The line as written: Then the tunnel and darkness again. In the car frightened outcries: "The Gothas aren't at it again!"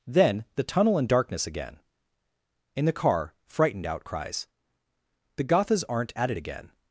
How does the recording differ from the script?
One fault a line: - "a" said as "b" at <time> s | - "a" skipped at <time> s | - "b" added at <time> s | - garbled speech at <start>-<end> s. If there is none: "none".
none